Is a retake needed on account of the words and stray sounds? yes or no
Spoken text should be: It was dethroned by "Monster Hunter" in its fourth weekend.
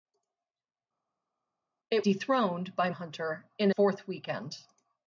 yes